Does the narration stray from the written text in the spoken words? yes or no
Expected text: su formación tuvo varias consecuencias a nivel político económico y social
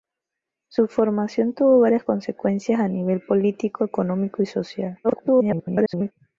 yes